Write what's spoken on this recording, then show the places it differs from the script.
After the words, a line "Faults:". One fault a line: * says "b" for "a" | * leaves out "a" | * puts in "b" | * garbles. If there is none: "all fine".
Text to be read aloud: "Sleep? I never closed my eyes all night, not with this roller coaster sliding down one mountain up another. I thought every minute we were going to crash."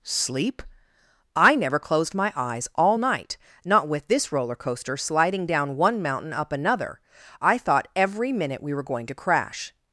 "Sleep? I never closed my eyes all night, not with this roller coaster sliding down one mountain up another. I thought every minute we were going to crash."
Faults:
all fine